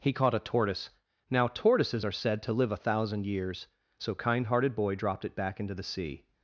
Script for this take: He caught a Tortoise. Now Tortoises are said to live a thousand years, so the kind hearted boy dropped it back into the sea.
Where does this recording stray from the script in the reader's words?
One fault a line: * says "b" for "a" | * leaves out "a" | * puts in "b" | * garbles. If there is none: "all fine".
* leaves out "the"